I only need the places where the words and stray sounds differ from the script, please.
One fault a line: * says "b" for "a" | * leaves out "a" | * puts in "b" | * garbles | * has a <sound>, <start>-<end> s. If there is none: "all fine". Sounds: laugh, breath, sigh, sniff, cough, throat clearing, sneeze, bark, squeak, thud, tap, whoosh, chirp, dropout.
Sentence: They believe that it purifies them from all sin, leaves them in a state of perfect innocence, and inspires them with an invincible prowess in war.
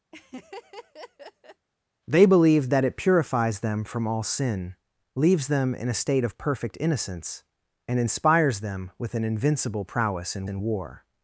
* has a laugh, 0.1-1.7 s
* puts in "in"